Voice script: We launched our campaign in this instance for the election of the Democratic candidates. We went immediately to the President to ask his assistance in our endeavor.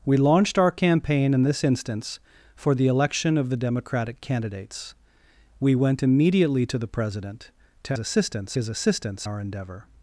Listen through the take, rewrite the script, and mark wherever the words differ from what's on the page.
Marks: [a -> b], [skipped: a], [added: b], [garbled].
We launched our campaign in this instance for the election of the Democratic candidates. We went immediately to the President to [ask -> assistance] his assistance [skipped: in] our endeavor.